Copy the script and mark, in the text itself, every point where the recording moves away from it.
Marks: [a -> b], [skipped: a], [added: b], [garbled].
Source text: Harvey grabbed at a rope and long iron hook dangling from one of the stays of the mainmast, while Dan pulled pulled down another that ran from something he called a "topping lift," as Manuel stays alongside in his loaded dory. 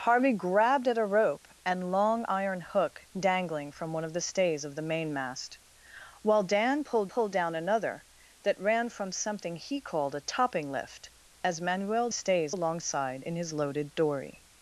Harvey grabbed at a rope and long iron hook dangling from one of the stays of the mainmast, while Dan pulled pulled down another that ran from something he called a "topping lift," as Manuel stays alongside in his loaded dory.